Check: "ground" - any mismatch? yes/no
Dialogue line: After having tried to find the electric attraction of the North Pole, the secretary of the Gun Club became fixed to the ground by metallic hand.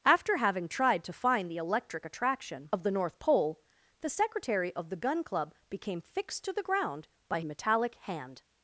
no